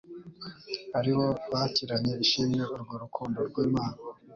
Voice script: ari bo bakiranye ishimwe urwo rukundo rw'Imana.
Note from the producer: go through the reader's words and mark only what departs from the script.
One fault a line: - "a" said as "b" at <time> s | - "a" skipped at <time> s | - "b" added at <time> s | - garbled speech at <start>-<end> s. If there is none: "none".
none